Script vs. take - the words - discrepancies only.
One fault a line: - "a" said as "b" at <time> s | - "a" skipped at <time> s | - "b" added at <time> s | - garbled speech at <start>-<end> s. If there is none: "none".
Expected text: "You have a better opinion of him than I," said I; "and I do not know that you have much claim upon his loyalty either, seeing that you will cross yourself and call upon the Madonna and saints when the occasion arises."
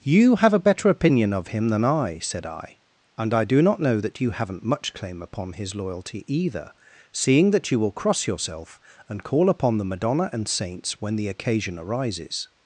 - "have" said as "haven't" at 4.3 s